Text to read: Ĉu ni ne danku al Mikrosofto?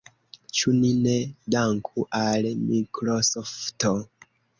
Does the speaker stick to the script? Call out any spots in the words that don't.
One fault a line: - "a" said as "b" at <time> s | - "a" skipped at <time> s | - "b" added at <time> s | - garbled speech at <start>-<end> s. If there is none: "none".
none